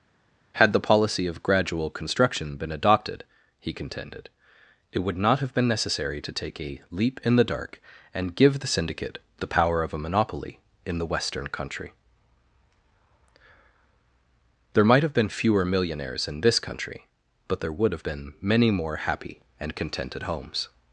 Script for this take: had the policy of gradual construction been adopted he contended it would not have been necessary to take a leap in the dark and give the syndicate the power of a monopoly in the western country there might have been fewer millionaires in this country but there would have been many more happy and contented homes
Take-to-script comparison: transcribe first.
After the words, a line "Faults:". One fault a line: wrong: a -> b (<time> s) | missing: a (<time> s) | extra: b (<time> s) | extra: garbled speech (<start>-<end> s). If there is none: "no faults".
had the policy of gradual construction been adopted he contended it would not have been necessary to take a leap in the dark and give the syndicate the power of a monopoly in the western country there might have been fewer millionaires in this country but there would have been many more happy and contented homes
Faults:
no faults